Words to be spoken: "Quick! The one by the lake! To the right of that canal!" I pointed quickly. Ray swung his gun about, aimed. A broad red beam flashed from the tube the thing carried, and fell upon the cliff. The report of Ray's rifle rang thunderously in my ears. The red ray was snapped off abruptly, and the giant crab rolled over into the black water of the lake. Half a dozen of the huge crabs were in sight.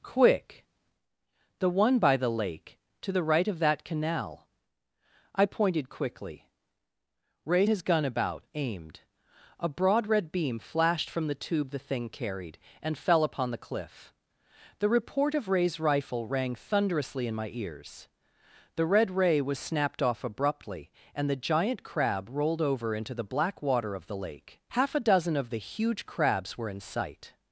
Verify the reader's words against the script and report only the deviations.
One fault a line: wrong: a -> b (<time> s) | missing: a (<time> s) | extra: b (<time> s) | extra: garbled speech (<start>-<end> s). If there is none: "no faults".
missing: swung (7.7 s)